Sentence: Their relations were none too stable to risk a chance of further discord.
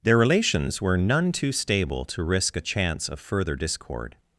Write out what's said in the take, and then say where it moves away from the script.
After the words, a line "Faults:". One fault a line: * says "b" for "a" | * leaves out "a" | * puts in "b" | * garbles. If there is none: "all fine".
Their relations were none too stable to risk a chance of further discord.
Faults:
all fine